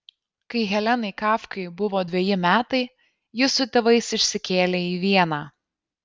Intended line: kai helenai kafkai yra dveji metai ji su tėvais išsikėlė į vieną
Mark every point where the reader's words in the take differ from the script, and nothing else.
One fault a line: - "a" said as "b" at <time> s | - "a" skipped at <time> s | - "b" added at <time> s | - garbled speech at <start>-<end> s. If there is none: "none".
- "yra" said as "buvo" at 1.8 s